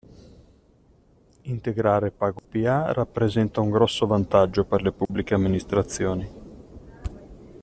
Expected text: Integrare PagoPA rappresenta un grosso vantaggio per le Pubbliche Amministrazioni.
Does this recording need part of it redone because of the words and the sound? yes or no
yes